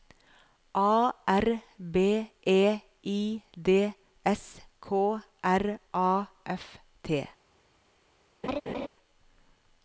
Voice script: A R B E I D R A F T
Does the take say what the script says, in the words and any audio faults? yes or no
no